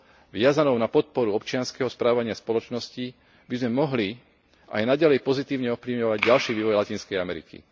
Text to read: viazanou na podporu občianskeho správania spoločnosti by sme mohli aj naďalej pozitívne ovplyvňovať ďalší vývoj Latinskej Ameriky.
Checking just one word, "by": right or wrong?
right